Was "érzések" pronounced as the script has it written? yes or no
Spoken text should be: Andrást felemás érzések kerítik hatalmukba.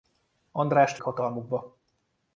no